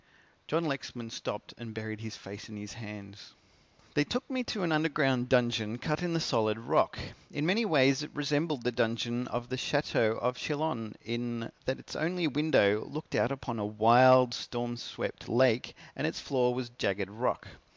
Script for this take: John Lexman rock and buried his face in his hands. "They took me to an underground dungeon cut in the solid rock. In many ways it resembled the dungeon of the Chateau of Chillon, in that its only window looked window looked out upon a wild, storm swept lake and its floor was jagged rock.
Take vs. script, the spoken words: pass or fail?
fail